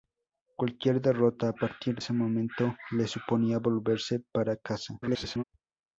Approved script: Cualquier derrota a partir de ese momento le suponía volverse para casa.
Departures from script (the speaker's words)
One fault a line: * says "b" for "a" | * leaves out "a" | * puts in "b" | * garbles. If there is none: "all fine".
* leaves out "de"
* garbles